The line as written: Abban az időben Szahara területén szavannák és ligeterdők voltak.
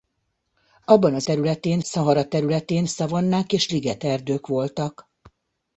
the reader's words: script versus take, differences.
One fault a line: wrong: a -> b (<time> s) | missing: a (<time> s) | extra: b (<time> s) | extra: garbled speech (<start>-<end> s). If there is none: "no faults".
wrong: időben -> területén (1.2 s)